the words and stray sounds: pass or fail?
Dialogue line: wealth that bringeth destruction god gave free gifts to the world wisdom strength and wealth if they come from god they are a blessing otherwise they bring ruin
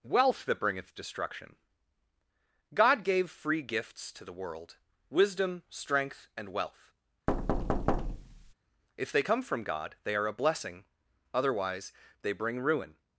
fail